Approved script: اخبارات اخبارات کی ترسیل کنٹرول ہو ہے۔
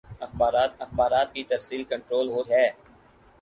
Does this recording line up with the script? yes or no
yes